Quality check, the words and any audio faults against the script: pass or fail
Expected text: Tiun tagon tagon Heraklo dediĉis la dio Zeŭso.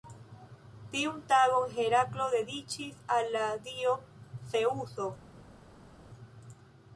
fail